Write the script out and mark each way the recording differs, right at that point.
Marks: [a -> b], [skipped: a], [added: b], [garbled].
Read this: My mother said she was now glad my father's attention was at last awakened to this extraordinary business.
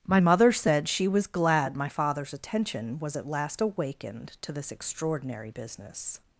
My mother said she was [skipped: now] glad my father's attention was at last awakened to this extraordinary business.